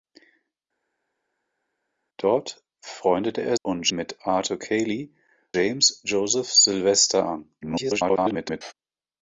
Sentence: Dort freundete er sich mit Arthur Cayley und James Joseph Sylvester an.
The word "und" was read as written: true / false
false